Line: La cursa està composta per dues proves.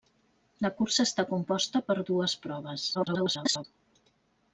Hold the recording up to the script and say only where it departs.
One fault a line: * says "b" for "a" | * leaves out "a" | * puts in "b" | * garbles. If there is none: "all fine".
* garbles